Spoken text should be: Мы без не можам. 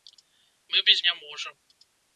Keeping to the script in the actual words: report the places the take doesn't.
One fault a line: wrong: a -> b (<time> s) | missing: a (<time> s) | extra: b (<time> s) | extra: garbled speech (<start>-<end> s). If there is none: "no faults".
no faults